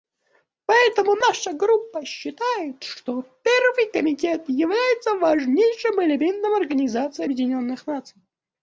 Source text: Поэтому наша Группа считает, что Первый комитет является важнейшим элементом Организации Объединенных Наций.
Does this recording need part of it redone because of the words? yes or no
no